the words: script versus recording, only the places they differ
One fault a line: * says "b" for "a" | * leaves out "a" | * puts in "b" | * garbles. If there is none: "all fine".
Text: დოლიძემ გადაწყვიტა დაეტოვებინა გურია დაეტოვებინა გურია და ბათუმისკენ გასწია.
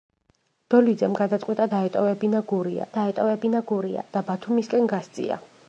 all fine